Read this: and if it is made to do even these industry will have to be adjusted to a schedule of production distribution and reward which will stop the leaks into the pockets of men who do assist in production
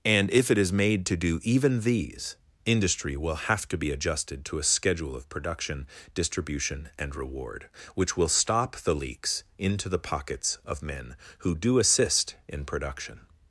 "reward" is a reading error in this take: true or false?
false